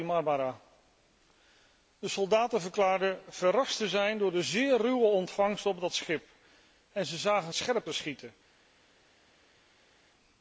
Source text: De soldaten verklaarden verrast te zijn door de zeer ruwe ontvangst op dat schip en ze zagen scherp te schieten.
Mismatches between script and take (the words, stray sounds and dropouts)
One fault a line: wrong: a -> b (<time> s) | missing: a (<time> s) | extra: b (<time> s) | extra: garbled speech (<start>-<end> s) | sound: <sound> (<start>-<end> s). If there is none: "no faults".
no faults